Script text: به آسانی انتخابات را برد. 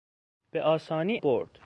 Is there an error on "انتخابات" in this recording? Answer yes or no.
yes